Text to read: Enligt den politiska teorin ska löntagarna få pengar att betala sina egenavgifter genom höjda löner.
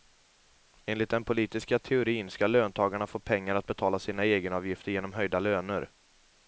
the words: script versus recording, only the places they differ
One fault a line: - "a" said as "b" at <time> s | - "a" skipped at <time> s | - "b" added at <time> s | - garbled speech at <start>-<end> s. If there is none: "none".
none